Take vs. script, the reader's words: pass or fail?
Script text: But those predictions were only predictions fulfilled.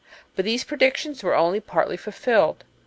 fail